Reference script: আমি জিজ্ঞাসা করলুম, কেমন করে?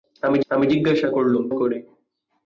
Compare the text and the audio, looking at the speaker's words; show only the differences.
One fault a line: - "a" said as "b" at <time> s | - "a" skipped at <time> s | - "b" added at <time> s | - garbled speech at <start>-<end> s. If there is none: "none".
- "আমি" added at 0.5 s
- "কেমন" skipped at 1.4 s